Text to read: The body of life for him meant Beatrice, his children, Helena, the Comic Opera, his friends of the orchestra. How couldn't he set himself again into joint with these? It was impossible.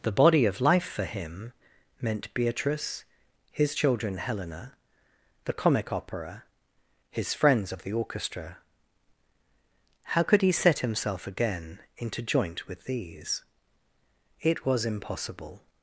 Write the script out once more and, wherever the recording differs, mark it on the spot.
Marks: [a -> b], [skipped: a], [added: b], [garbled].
The body of life for him meant Beatrice, his children, Helena, the Comic Opera, his friends of the orchestra. How [couldn't -> could] he set himself again into joint with these? It was impossible.